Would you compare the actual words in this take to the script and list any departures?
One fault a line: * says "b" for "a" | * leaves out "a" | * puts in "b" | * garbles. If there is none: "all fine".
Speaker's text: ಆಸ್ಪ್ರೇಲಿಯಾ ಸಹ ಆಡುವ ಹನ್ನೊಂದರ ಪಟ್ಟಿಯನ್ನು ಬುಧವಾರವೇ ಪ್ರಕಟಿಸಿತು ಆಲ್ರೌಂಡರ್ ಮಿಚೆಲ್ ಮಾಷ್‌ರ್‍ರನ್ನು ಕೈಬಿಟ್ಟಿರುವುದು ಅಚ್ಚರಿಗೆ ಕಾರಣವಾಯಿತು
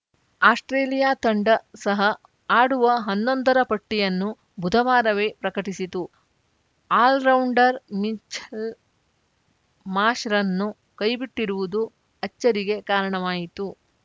* puts in "ತಂಡ"